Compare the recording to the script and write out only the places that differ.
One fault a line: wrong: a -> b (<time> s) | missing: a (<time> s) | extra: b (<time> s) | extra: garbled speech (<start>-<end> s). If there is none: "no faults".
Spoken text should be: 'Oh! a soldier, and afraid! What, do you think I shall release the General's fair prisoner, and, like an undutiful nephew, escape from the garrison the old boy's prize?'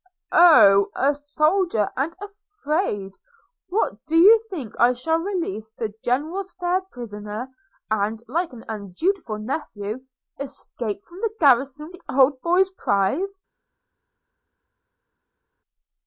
no faults